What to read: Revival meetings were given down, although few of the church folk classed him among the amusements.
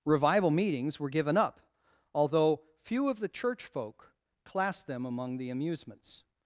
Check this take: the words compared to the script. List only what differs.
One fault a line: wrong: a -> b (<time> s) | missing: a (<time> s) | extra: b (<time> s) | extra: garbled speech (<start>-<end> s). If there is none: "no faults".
wrong: down -> up (1.4 s)
wrong: him -> them (4.9 s)